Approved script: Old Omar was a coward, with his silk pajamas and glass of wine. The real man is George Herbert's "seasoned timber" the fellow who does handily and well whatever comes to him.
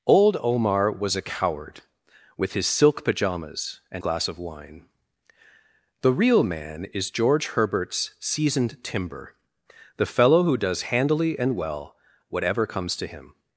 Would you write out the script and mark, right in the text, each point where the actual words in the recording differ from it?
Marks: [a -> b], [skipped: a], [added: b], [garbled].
Old Omar was a coward, with his silk pajamas and glass of wine. The real man is George Herbert's "seasoned timber" the fellow who does handily and well whatever comes to him.